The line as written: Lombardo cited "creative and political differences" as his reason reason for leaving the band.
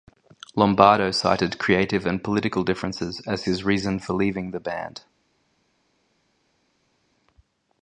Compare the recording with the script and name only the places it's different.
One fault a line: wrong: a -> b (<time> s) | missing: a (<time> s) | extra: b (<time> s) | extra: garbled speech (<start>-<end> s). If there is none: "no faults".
missing: reason (4.0 s)